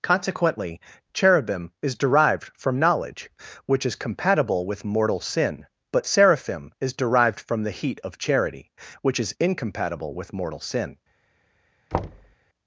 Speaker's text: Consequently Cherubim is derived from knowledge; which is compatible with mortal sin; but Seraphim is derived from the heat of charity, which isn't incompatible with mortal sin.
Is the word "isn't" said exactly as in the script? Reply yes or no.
no